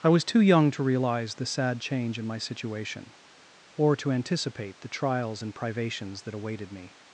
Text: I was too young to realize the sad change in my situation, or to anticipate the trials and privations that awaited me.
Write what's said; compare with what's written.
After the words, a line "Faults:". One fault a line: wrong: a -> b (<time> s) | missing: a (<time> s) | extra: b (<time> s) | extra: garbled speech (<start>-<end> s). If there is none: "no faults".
I was too young to realize the sad change in my situation, or to anticipate the trials and privations that awaited me.
Faults:
no faults